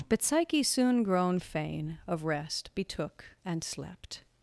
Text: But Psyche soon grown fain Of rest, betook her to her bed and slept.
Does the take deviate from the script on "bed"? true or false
true